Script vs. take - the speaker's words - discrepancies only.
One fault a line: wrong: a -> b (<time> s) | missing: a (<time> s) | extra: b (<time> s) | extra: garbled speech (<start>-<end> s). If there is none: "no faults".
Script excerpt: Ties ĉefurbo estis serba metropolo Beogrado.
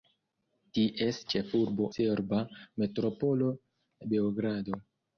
missing: estis (1.9 s)